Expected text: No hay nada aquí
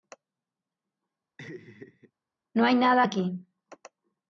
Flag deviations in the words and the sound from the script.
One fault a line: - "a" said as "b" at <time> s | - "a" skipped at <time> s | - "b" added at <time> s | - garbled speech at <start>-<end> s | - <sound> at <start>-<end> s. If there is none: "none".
- laugh at 1.4-2.1 s